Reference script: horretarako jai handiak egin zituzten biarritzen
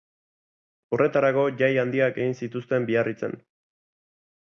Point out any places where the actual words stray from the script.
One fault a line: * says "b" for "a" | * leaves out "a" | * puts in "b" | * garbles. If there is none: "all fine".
all fine